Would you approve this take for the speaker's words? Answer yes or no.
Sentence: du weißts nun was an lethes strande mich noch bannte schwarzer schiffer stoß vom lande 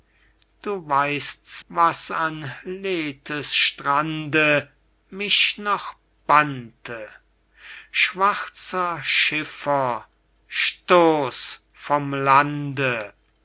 no